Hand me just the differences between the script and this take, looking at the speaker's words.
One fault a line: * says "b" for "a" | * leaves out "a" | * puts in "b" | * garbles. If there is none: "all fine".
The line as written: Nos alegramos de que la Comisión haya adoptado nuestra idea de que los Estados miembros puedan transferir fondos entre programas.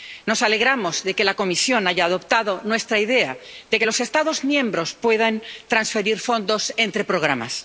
all fine